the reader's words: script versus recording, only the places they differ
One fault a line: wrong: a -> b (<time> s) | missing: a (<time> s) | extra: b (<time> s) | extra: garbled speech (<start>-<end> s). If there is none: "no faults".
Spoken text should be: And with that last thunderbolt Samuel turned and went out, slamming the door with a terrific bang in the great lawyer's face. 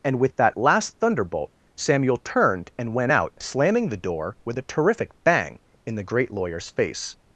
no faults